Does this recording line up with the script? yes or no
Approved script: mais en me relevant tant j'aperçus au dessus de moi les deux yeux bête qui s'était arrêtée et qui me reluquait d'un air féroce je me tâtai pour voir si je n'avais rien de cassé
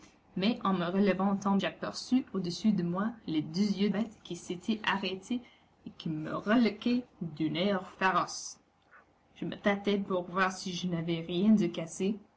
yes